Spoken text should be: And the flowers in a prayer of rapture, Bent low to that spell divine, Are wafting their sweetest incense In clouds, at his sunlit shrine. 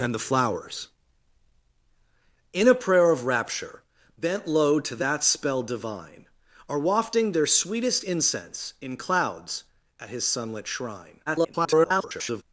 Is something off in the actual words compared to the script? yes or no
yes